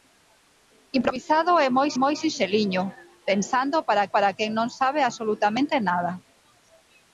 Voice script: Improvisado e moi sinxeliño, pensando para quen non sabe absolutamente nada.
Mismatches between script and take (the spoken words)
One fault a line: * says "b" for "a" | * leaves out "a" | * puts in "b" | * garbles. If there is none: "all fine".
* puts in "moi"
* puts in "para"